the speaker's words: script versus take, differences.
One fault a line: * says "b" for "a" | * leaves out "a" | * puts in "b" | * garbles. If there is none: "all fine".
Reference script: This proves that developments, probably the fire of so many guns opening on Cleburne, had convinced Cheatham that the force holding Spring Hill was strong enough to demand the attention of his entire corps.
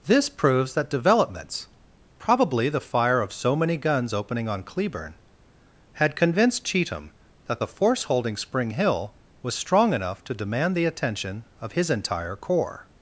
all fine